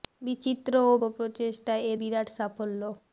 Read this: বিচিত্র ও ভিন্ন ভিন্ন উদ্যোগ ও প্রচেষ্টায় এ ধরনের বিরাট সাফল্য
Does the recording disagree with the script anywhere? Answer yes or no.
yes